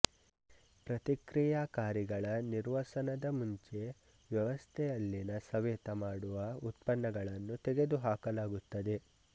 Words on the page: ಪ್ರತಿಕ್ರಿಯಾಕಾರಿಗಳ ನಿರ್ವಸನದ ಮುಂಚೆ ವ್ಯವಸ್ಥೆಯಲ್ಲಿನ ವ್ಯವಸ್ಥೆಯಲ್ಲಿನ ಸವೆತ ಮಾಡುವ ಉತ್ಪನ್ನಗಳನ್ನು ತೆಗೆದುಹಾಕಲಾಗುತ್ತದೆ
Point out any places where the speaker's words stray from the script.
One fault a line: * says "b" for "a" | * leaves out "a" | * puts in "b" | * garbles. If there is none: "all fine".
* leaves out "ವ್ಯವಸ್ಥೆಯಲ್ಲಿನ"